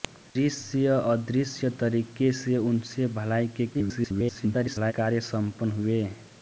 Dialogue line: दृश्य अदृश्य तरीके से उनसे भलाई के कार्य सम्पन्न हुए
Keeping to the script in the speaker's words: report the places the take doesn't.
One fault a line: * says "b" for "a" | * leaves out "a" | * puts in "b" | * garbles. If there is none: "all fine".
* garbles